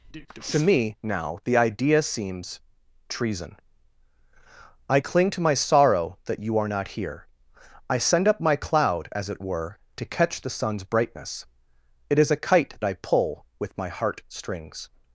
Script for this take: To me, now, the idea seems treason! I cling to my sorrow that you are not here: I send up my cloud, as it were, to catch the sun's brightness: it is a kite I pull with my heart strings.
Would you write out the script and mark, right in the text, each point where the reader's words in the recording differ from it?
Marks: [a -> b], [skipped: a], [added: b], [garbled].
To me, now, the idea seems treason! I cling to my sorrow that you are not here: I send up my cloud, as it were, to catch the sun's brightness: it is a kite I pull with my heart strings.